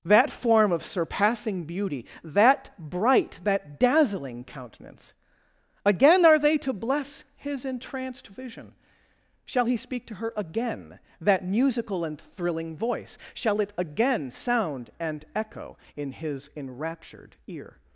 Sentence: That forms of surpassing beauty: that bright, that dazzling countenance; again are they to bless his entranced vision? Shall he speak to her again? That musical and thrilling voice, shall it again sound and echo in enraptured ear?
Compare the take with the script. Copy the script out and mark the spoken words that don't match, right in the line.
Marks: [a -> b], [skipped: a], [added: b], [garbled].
That [forms -> form] of surpassing beauty: that bright, that dazzling countenance; again are they to bless his entranced vision? Shall he speak to her again? That musical and thrilling voice, shall it again sound and echo in [added: his] enraptured ear?